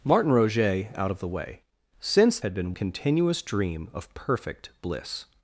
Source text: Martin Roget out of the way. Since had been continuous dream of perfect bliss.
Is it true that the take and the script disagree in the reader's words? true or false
false